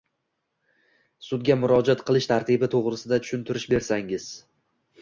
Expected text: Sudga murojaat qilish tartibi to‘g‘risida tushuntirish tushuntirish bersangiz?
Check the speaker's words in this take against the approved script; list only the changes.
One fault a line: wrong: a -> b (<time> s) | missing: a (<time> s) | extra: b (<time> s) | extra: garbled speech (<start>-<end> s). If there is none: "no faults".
missing: tushuntirish (3.7 s)